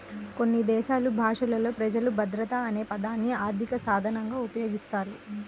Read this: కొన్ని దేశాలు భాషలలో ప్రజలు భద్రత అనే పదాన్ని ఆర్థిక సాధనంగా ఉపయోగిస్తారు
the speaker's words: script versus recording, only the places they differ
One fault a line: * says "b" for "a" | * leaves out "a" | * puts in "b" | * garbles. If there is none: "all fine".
all fine